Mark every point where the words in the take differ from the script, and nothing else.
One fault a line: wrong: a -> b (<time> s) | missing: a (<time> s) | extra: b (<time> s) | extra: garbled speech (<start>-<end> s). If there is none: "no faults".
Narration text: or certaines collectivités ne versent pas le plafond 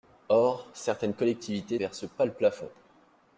missing: ne (1.8 s)